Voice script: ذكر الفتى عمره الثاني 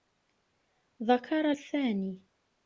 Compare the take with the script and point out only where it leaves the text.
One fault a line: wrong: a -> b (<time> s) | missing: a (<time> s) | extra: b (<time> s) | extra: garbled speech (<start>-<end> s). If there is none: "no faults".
missing: الفتى عمره (1.5 s)